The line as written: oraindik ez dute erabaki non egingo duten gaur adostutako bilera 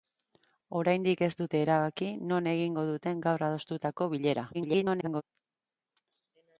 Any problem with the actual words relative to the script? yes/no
yes